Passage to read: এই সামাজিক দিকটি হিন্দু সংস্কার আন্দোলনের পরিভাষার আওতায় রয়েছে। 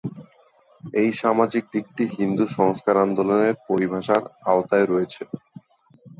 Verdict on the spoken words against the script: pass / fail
pass